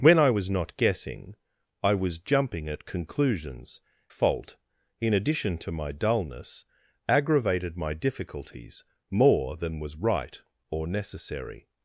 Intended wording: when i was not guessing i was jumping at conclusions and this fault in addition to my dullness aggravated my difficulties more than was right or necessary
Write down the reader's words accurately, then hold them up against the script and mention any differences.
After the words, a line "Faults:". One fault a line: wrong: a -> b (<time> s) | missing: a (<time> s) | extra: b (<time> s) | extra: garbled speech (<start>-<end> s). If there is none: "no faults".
when i was not guessing i was jumping at conclusions fault in addition to my dullness aggravated my difficulties more than was right or necessary
Faults:
missing: and this (3.8 s)